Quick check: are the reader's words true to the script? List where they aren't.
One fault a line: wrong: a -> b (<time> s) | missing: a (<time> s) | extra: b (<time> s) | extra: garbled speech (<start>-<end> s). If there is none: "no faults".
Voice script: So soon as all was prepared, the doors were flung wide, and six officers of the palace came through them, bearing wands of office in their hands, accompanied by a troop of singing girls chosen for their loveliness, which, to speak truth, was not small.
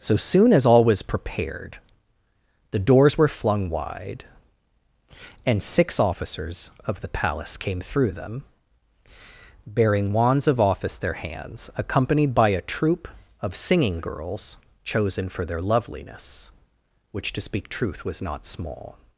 missing: in (10.9 s)